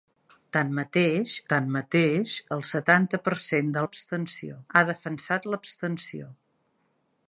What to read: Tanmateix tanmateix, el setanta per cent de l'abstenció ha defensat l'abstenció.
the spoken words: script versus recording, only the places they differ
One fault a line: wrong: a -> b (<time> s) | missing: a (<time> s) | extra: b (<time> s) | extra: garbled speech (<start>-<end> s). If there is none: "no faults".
no faults